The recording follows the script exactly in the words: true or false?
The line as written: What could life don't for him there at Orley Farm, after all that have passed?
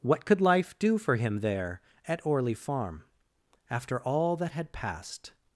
false